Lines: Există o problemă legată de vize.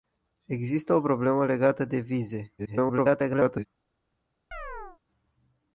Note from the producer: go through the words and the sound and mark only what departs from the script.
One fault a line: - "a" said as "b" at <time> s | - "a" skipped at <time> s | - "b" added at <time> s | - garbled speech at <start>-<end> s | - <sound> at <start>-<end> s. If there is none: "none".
- garbled speech at 2.6-3.7 s
- chirp at 4.5-5.0 s